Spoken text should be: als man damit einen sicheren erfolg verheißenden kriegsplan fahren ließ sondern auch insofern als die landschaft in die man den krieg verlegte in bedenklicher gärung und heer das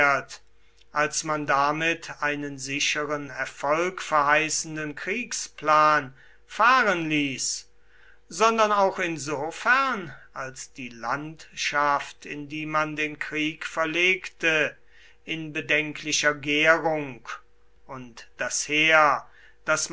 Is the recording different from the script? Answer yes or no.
yes